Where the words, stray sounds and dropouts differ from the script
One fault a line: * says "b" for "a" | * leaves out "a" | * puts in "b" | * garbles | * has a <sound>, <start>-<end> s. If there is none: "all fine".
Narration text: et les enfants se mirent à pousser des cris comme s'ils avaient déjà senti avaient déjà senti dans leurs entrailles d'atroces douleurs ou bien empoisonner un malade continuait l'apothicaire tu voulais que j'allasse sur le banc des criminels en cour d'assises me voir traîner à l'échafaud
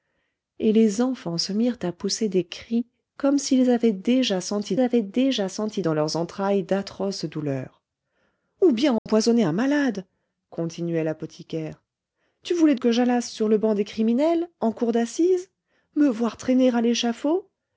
* has a dropout, 9.0-9.1 s